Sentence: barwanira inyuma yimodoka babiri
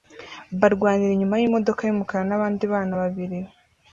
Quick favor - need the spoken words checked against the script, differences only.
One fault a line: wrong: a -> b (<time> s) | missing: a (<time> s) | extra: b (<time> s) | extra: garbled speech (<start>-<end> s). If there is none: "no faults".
extra: yumukara nabandi bana (1.8 s)